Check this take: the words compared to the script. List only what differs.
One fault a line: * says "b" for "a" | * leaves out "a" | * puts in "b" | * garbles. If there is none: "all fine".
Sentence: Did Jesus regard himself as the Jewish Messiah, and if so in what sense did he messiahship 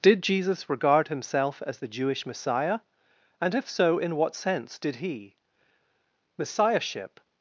all fine